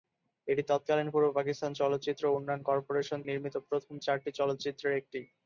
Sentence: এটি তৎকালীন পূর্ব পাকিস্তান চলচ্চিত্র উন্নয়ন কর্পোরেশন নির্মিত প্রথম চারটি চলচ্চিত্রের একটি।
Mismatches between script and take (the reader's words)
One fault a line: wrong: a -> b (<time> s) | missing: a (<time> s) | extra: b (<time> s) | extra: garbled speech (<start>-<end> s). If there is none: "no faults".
no faults